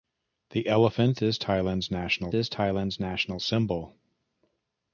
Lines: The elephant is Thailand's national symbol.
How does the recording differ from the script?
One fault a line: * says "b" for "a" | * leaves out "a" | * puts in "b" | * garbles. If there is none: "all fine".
* puts in "is Thailand's national"